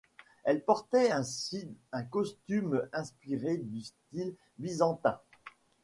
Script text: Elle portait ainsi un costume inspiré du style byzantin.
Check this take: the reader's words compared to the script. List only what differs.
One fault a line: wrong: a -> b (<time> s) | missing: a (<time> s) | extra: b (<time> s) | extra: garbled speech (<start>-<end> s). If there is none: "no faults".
no faults